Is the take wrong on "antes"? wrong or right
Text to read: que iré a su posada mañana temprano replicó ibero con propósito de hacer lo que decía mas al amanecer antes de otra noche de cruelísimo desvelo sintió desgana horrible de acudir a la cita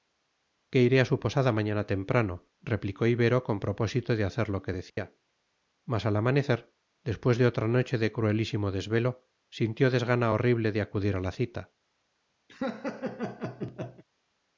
wrong